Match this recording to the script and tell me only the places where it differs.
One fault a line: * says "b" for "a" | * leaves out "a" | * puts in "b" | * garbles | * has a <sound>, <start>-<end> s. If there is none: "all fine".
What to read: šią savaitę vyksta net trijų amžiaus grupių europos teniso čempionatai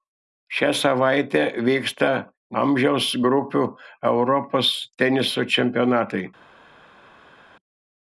* leaves out "net trijų"